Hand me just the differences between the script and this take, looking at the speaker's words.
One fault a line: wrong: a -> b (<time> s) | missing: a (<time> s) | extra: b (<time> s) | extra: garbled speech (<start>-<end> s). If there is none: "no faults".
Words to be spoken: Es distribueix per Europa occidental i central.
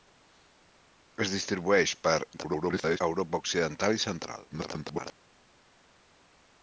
extra: garbled speech (2.3-3.0 s)
extra: garbled speech (4.5-5.1 s)